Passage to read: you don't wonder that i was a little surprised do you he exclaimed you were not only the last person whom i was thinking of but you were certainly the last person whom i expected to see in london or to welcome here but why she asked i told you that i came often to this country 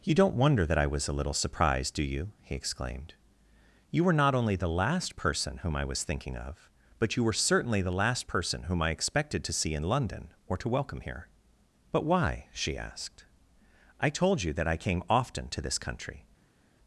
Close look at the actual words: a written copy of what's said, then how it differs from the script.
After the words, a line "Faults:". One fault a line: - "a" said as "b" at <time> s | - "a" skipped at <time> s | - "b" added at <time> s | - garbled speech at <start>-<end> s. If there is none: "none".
you don't wonder that i was a little surprised do you he exclaimed you were not only the last person whom i was thinking of but you were certainly the last person whom i expected to see in london or to welcome here but why she asked i told you that i came often to this country
Faults:
none